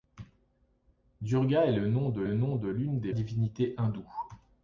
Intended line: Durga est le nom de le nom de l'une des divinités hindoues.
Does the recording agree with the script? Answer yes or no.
yes